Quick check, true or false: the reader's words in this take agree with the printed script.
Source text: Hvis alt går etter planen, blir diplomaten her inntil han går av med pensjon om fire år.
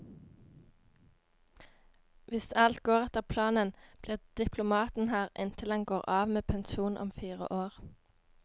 true